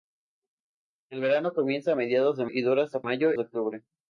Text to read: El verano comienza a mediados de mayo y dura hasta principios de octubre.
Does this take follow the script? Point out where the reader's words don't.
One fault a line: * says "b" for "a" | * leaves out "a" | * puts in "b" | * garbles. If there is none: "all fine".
* leaves out "mayo"
* says "mayo" for "principios"